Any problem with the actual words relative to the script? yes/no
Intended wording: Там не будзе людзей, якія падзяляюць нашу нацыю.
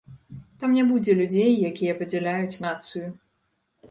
yes